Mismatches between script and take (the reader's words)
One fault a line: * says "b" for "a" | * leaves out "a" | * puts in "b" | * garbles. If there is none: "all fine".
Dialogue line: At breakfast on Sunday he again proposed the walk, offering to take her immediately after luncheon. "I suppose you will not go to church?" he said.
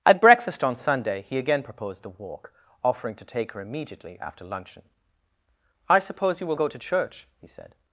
* leaves out "not"